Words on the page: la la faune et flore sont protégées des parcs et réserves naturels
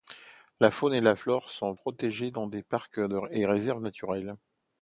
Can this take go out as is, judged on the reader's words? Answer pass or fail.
fail